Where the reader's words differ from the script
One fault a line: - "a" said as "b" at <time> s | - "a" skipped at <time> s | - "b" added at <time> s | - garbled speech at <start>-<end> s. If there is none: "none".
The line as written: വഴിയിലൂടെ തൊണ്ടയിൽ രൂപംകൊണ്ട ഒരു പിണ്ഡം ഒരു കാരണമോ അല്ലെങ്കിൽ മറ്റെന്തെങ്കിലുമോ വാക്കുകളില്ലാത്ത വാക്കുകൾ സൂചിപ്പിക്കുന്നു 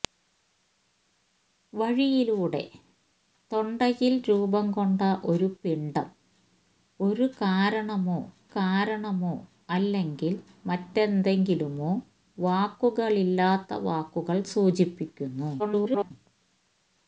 - "കാരണമോ" added at 8.5 s
- garbled speech at 15.6-16.1 s